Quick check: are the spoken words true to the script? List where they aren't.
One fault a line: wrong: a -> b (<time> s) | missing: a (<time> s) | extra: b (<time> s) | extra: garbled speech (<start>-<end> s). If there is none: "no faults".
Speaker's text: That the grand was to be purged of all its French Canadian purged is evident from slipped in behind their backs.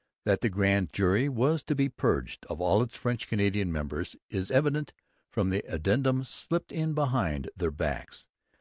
extra: jury (0.9 s)
wrong: purged -> members (3.7 s)
extra: the addendum (5.5 s)